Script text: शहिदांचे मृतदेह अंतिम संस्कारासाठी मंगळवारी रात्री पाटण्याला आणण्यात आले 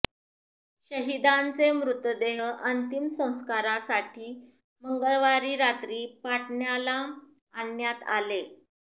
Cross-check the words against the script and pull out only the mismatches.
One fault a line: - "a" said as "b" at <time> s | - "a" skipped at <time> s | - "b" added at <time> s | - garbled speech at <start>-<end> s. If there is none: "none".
none